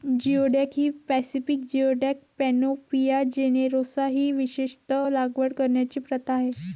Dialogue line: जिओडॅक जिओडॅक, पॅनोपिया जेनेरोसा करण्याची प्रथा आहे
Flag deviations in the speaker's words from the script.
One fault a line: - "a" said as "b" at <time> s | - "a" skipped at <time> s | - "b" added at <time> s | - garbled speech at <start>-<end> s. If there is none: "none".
- "ही पॅसिफिक" added at 0.7 s
- "ही विशेषत लागवड" added at 4.1 s